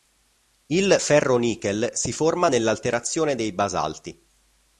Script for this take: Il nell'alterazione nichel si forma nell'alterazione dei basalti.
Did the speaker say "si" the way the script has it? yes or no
yes